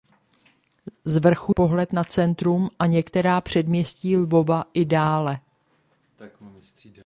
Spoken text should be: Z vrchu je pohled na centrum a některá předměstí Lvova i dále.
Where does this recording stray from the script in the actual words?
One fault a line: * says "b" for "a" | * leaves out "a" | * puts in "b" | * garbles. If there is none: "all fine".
* leaves out "je"